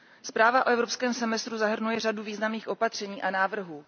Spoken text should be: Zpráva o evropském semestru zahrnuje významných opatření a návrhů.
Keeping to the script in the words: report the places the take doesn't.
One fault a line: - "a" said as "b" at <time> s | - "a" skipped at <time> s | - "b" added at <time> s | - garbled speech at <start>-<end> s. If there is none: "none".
- "řadu" added at 2.0 s